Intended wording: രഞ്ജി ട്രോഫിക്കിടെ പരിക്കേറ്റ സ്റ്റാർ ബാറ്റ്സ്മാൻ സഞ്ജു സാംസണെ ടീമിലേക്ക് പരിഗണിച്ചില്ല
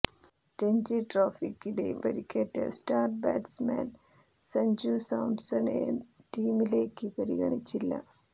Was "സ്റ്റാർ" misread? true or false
false